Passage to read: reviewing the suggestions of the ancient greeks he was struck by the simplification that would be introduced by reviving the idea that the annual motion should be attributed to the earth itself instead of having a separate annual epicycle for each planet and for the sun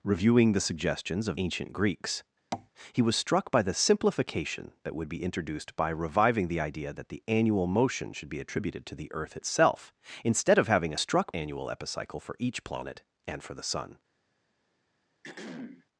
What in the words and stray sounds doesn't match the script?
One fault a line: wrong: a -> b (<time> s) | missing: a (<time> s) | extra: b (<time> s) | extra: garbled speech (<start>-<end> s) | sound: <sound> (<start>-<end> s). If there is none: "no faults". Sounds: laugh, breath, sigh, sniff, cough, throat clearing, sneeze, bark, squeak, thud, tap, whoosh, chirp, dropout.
missing: the (1.4 s)
sound: tap (2.5-2.7 s)
wrong: separate -> struck (11.0 s)
sound: throat clearing (15.2-15.9 s)